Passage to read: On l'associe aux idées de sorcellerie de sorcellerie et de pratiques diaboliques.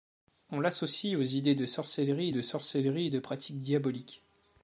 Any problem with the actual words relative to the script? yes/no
no